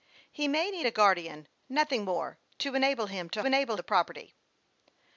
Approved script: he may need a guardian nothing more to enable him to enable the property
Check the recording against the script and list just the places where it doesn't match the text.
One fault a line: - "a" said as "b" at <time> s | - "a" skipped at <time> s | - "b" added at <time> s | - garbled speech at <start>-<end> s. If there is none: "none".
none